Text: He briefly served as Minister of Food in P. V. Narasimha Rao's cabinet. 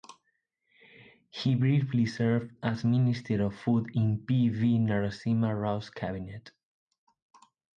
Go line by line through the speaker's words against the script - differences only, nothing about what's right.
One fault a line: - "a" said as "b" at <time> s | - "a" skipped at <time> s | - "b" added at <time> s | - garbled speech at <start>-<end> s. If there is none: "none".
none